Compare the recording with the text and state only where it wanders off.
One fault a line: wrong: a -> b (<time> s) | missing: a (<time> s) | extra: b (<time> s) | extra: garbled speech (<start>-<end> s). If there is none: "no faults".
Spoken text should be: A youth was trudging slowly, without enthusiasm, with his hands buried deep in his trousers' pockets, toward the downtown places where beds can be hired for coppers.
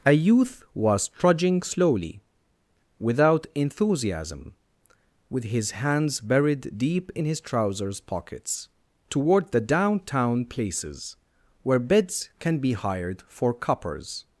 no faults